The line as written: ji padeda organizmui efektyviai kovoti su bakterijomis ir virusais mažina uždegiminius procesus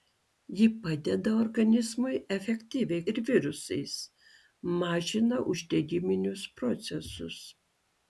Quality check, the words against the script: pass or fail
fail